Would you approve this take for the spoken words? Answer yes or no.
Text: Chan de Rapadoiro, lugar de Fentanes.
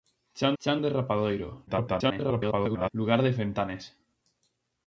no